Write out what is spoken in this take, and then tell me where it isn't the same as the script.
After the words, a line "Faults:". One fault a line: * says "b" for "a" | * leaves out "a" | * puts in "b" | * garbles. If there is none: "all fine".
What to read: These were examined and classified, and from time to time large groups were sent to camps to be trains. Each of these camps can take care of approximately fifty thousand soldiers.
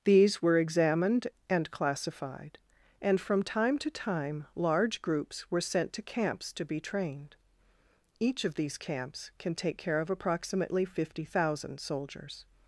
These were examined and classified, and from time to time large groups were sent to camps to be trained. Each of these camps can take care of approximately fifty thousand soldiers.
Faults:
* says "trained" for "trains"